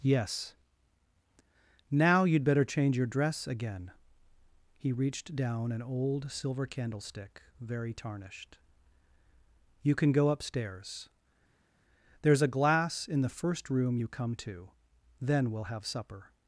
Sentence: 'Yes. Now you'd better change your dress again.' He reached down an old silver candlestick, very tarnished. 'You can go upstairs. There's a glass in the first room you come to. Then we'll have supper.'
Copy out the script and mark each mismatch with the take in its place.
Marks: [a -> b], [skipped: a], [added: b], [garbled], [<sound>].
'Yes. Now you'd better change your dress again.' He reached down an old silver candlestick, very tarnished. 'You can go upstairs. There's a glass in the first room you come to. Then we'll have supper.'